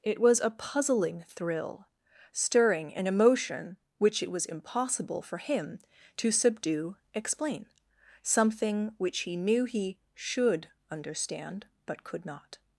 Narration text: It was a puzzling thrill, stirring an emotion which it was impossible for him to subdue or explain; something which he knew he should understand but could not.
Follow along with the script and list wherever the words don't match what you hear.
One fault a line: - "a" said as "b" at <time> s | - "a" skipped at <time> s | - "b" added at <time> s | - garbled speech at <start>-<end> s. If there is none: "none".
- "or" skipped at 7.0 s